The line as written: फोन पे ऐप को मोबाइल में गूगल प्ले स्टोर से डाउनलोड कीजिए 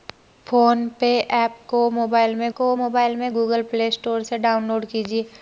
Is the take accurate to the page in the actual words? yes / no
no